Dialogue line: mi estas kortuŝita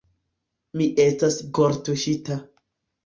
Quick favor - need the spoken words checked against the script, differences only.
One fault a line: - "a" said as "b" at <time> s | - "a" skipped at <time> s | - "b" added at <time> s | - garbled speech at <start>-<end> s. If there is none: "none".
none